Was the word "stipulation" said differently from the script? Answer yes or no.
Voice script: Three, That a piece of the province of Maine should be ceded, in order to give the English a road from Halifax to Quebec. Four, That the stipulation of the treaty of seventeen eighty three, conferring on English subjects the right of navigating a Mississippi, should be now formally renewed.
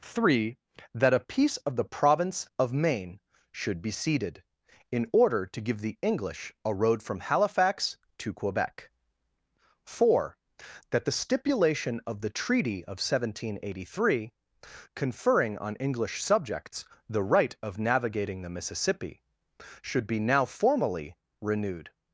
no